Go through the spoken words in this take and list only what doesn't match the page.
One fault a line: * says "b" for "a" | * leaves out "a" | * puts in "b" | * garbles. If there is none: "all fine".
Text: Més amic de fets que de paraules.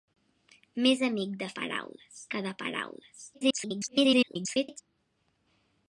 * says "paraules" for "fets"
* garbles